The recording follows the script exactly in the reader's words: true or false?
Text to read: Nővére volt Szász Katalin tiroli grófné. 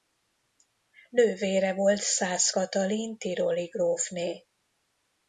true